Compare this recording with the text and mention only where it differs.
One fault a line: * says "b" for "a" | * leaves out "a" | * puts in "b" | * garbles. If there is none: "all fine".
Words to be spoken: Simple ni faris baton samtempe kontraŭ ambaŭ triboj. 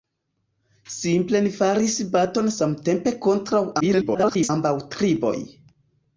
* garbles